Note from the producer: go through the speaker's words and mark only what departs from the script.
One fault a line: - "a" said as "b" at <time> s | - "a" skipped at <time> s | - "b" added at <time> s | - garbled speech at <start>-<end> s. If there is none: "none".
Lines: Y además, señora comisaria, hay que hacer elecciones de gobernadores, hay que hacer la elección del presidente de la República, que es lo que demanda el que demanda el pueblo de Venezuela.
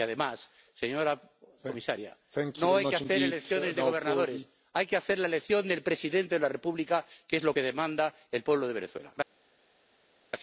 - "no" added at 2.6 s
- "que demanda el" skipped at 8.4 s